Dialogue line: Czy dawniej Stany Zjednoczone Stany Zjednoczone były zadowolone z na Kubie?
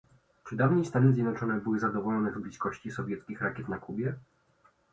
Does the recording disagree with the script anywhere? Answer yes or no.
yes